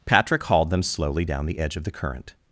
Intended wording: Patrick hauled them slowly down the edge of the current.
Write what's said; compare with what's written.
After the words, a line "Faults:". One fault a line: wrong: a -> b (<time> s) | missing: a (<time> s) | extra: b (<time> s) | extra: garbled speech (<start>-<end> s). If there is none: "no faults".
Patrick hauled them slowly down the edge of the current.
Faults:
no faults